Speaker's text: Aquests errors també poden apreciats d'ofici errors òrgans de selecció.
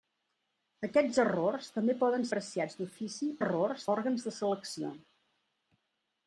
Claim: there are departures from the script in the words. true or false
false